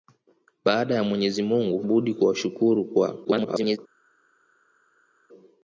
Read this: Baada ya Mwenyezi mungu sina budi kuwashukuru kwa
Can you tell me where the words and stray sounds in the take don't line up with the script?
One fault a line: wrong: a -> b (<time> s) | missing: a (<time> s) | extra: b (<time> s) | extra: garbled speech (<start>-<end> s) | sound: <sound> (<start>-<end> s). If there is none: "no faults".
missing: sina (1.9 s)
extra: garbled speech (3.2-3.8 s)